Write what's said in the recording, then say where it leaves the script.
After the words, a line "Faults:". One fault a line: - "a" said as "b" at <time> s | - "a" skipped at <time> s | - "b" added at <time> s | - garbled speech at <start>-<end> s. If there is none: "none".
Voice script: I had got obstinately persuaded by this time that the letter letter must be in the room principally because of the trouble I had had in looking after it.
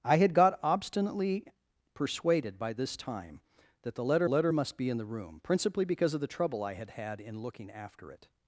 I had got obstinately persuaded by this time that the letter letter must be in the room principally because of the trouble I had had in looking after it.
Faults:
none